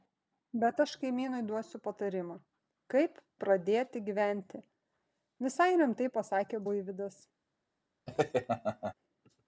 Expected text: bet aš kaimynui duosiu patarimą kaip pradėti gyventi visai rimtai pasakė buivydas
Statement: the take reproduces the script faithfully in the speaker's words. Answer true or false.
true